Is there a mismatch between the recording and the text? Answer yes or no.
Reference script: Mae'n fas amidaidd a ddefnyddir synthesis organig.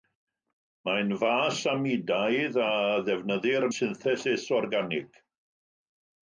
no